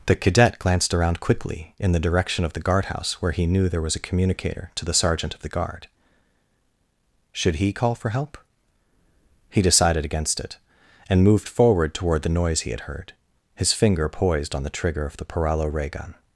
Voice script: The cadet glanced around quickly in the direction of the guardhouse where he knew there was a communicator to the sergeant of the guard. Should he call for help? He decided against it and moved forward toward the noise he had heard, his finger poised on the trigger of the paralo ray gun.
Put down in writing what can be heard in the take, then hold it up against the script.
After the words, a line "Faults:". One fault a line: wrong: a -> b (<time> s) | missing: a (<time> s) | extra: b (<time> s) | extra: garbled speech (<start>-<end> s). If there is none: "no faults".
The cadet glanced around quickly in the direction of the guardhouse where he knew there was a communicator to the sergeant of the guard. Should he call for help? He decided against it and moved forward toward the noise he had heard, his finger poised on the trigger of the paralo ray gun.
Faults:
no faults